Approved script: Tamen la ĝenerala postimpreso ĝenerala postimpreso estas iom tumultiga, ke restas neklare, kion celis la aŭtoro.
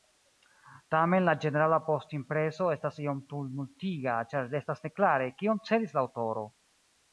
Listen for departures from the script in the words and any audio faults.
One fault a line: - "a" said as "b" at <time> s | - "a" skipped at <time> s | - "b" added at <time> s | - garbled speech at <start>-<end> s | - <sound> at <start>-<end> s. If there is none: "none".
- "ĝenerala postimpreso" skipped at 2.7 s
- "ke" said as "ĉar" at 4.3 s